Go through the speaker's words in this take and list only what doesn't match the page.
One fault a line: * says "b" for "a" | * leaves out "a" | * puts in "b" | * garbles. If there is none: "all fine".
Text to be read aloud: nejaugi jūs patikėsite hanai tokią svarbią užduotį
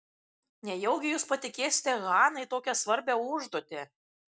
all fine